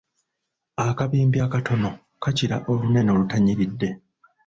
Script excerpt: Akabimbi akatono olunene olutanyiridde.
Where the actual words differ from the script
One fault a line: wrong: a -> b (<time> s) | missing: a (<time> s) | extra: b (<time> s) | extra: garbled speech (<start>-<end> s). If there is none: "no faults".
extra: kakira (2.2 s)